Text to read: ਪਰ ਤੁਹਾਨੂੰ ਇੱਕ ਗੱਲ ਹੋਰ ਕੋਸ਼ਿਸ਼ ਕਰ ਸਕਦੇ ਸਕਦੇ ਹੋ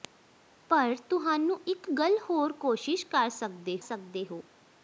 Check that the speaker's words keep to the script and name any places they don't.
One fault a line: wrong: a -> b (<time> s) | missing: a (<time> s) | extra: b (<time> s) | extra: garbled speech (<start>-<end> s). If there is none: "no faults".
no faults